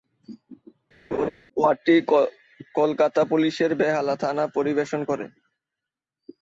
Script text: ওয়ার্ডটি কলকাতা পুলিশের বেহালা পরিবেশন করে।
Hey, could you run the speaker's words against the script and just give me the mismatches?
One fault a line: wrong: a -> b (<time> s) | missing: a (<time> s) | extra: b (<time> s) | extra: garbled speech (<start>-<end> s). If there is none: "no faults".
extra: থানা (4.2 s)